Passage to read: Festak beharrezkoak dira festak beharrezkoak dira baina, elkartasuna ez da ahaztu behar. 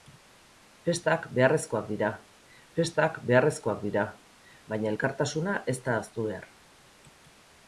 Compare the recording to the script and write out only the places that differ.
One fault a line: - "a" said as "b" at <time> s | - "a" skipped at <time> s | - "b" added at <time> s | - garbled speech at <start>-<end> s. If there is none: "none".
none